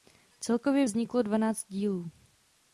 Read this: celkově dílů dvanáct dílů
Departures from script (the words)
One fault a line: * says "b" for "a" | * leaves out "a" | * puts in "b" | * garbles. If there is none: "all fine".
* says "vzniklo" for "dílů"